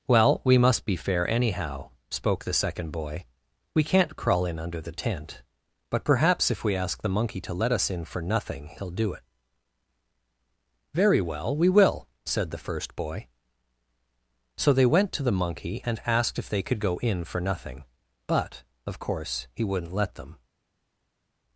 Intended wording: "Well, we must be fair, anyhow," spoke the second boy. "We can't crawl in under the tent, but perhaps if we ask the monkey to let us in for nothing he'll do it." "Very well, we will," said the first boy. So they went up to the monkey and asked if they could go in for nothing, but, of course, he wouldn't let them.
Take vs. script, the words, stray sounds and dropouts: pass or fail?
fail